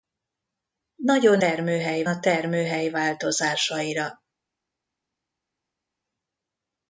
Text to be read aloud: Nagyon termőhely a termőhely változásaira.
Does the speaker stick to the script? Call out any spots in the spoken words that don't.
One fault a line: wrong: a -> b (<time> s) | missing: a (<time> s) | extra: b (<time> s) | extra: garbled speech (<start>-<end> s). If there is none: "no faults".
no faults